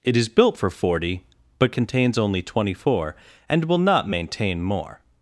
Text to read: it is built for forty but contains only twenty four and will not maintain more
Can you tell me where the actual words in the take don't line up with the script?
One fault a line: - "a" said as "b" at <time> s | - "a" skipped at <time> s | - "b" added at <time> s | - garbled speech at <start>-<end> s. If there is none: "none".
none